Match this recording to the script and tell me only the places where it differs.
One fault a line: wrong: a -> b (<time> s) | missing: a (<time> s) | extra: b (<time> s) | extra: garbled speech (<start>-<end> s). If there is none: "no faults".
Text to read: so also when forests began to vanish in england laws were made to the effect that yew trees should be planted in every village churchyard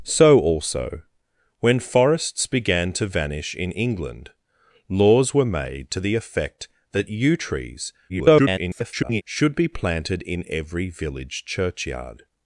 extra: garbled speech (8.1-9.2 s)